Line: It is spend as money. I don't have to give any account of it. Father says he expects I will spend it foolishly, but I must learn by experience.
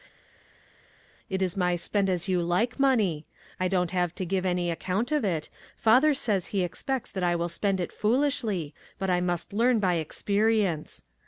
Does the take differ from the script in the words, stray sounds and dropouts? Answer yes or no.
yes